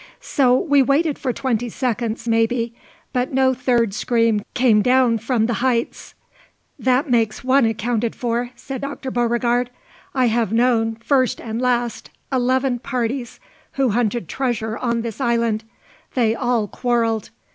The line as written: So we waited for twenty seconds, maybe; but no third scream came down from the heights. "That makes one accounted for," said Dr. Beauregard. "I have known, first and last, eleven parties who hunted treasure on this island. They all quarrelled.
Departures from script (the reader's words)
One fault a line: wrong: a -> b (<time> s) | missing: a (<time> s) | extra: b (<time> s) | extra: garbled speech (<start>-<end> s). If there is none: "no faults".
no faults